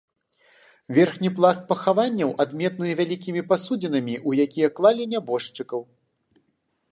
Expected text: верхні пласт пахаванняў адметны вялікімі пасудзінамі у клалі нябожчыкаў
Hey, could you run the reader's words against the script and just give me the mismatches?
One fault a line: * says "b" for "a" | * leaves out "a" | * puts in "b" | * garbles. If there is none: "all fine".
* puts in "якія"